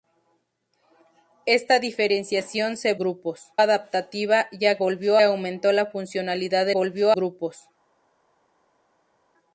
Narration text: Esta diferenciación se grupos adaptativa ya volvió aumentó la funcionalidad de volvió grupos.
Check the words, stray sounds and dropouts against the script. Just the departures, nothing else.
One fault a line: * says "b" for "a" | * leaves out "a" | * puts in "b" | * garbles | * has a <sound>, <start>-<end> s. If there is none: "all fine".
all fine